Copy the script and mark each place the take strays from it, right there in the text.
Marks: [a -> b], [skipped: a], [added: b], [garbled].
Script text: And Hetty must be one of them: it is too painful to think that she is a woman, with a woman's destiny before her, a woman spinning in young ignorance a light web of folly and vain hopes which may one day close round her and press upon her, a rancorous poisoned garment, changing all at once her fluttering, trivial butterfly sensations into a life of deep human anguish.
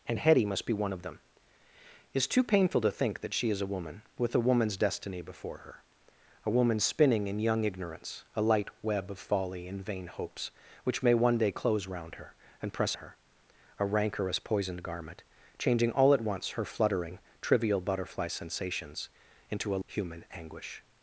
And Hetty must be one of them: it is too painful to think that she is a woman, with a woman's destiny before her, a woman spinning in young ignorance a light web of folly and vain hopes which may one day close round her and press [skipped: upon] her, a rancorous poisoned garment, changing all at once her fluttering, trivial butterfly sensations into a [skipped: life of deep] human anguish.